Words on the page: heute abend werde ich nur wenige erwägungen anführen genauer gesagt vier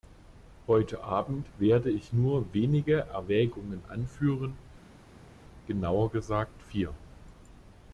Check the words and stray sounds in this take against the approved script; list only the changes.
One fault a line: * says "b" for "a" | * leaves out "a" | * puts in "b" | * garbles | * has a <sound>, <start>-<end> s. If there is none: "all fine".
all fine